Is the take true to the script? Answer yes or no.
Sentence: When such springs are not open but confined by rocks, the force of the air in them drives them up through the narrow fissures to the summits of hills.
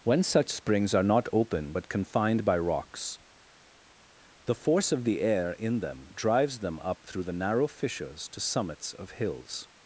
no